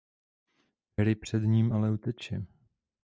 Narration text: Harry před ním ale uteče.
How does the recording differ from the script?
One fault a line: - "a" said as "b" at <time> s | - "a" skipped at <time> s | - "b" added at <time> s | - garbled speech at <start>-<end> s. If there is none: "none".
none